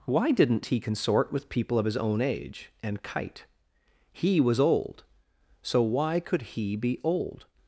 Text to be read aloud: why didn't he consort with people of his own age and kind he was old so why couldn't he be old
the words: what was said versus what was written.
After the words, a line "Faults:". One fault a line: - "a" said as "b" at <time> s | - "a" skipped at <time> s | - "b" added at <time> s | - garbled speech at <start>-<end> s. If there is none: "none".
why didn't he consort with people of his own age and kite he was old so why could he be old
Faults:
- "kind" said as "kite" at 3.0 s
- "couldn't" said as "could" at 6.2 s